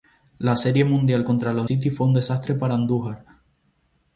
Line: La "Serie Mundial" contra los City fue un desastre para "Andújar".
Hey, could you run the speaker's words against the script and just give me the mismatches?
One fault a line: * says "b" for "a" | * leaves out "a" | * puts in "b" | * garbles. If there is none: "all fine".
all fine